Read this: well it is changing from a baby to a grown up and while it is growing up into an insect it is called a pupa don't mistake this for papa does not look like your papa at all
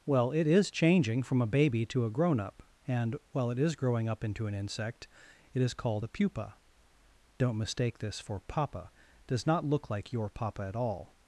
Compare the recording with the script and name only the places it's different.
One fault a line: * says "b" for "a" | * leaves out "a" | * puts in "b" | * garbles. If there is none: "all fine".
all fine